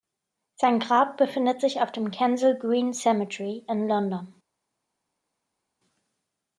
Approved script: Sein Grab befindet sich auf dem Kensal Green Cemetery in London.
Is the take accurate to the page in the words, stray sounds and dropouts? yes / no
yes